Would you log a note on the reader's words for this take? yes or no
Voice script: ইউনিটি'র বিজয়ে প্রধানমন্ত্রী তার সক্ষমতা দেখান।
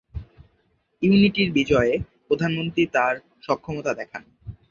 no